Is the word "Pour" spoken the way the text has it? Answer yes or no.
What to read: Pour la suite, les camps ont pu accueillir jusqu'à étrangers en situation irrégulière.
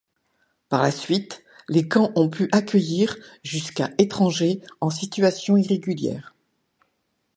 no